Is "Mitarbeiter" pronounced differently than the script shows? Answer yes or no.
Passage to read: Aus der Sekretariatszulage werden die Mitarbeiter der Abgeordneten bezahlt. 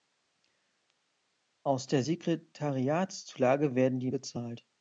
yes